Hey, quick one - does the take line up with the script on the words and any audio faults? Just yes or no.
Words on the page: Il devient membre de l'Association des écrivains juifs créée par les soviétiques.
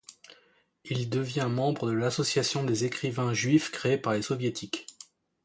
yes